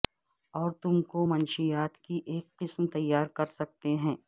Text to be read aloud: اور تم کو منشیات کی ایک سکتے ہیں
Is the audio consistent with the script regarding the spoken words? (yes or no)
no